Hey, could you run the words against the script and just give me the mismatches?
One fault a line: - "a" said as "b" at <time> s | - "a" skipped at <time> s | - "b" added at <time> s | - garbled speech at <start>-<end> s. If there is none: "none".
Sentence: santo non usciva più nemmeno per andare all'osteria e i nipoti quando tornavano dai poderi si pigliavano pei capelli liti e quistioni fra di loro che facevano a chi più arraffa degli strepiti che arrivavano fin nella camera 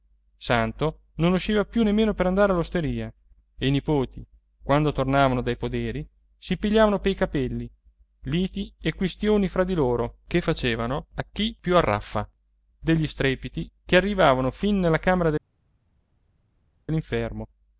none